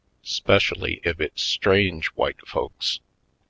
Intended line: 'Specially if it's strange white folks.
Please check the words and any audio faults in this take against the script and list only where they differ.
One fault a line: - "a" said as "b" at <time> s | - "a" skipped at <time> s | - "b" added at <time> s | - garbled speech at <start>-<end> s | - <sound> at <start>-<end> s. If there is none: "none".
none